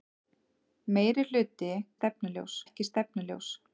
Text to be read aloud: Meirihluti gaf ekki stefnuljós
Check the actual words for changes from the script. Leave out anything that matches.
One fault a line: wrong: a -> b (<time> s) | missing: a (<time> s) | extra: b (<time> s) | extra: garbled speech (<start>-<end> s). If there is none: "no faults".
wrong: gaf -> stefnuljós (2.0 s)